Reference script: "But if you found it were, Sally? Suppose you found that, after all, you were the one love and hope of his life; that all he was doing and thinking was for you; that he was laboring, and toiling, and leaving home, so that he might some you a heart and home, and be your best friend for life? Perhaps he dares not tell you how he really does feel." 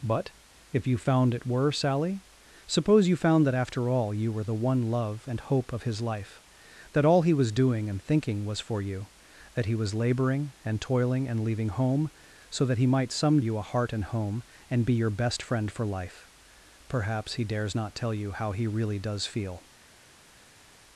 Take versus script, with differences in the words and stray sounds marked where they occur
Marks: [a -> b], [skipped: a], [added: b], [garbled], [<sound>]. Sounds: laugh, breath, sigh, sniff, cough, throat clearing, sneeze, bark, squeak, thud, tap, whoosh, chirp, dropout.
"But if you found it were, Sally? Suppose you found that, after all, you were the one love and hope of his life; that all he was doing and thinking was for you; that he was laboring, and toiling, and leaving home, so that he might some you a heart and home, and be your best friend for life? Perhaps he dares not tell you how he really does feel."